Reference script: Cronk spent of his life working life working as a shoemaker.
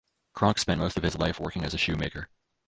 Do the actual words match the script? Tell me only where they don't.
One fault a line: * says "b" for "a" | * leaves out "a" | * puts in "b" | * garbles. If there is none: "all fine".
* puts in "most"
* leaves out "life working"